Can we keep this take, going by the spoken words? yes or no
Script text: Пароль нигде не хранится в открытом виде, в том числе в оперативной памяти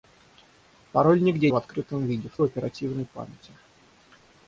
no